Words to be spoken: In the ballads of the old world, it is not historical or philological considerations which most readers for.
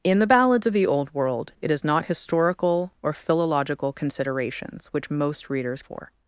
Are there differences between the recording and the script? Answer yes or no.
no